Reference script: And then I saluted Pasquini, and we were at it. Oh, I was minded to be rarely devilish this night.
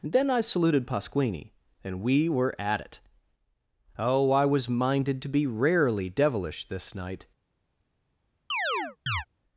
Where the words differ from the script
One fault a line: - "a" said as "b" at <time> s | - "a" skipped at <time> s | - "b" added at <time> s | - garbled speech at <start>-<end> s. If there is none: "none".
- "And" skipped at 0.0 s